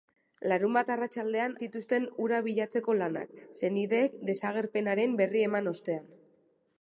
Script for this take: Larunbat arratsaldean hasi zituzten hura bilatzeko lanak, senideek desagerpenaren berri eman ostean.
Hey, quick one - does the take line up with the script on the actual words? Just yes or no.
no